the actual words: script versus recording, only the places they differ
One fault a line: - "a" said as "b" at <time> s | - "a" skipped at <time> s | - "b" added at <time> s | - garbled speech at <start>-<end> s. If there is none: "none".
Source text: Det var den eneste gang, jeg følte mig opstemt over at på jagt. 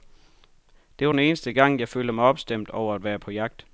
- "være" added at 3.0 s